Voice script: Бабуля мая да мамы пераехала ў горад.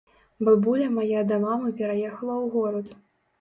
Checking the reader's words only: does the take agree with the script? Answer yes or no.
yes